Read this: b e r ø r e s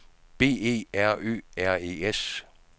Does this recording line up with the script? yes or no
yes